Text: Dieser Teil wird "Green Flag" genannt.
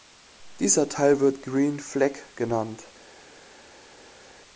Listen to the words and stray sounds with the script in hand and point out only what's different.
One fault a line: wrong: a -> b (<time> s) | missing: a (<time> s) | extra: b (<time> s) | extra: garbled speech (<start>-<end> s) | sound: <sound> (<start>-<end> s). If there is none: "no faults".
no faults